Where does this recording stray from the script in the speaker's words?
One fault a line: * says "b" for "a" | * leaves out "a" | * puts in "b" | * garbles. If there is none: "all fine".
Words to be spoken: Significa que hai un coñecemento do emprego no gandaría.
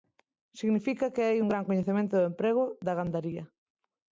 * puts in "gran"
* says "da" for "no"